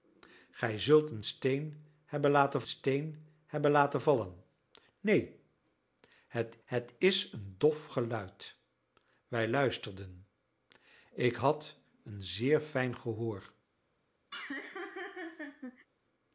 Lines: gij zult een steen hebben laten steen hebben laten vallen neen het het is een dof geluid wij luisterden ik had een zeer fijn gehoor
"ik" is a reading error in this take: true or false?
false